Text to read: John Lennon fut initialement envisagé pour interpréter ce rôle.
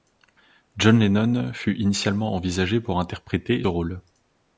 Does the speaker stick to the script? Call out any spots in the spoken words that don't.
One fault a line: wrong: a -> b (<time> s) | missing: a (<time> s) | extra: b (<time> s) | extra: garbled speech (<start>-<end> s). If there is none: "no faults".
missing: ce (3.6 s)